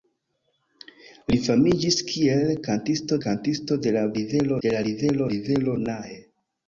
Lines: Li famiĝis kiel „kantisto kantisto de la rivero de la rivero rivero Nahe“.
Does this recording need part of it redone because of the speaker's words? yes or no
no